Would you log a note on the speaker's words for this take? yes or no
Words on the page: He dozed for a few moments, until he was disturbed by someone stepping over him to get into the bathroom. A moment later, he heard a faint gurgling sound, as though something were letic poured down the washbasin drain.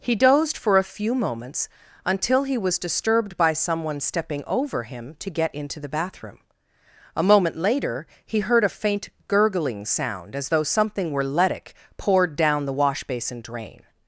no